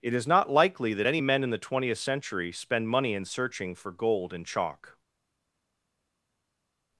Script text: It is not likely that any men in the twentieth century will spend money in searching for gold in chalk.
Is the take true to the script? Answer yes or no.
no